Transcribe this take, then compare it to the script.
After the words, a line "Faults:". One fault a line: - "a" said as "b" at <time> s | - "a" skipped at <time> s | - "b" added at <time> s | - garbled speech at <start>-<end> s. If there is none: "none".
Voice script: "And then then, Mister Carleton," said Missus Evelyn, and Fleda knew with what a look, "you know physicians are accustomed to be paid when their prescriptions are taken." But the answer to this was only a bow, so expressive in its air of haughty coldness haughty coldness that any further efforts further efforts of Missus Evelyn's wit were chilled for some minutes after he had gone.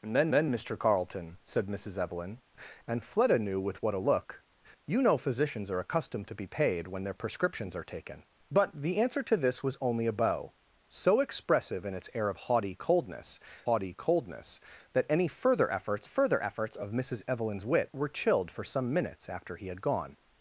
"And then then, Mister Carleton," said Missus Evelyn, and Fleda knew with what a look, "you know physicians are accustomed to be paid when their prescriptions are taken." But the answer to this was only a bow, so expressive in its air of haughty coldness haughty coldness that any further efforts further efforts of Missus Evelyn's wit were chilled for some minutes after he had gone.
Faults:
none